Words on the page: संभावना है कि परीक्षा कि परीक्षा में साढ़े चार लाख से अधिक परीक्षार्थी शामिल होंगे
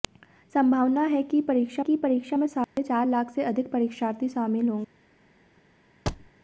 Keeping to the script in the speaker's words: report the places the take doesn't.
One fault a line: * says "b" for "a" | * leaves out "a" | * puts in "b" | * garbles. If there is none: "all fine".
all fine